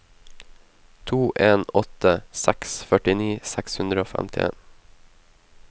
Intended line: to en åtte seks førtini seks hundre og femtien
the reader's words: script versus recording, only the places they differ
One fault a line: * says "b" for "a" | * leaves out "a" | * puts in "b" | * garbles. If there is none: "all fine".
all fine